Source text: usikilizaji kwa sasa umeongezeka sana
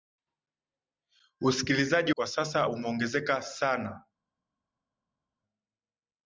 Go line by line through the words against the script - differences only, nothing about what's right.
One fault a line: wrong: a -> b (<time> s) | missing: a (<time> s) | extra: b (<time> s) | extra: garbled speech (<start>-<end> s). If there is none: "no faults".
no faults